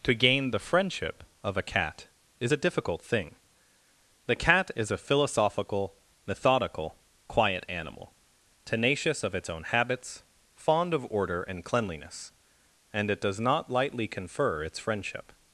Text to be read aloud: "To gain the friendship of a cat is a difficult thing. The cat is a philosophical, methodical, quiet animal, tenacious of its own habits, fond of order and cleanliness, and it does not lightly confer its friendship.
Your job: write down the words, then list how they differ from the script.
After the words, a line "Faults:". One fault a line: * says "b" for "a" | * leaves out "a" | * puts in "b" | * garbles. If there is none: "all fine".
"To gain the friendship of a cat is a difficult thing. The cat is a philosophical, methodical, quiet animal, tenacious of its own habits, fond of order and cleanliness, and it does not lightly confer its friendship.
Faults:
all fine